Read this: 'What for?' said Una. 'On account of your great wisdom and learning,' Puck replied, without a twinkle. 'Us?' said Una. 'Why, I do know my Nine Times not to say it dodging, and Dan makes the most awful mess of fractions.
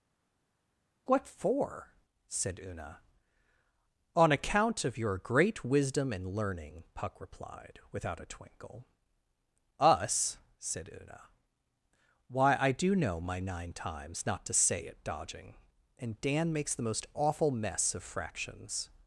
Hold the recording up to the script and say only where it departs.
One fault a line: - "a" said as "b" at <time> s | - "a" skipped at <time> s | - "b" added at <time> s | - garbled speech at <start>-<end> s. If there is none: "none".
none